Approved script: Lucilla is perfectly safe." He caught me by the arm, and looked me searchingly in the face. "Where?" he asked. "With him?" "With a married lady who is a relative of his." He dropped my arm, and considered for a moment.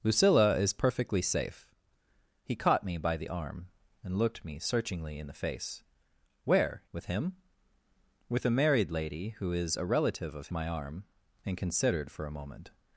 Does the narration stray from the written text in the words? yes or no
yes